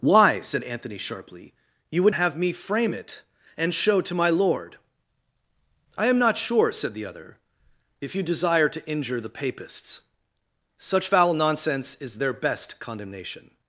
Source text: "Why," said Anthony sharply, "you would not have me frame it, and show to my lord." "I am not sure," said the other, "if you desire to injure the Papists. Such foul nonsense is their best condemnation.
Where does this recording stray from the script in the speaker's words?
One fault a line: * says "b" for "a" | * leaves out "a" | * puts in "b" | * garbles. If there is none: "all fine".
* leaves out "not"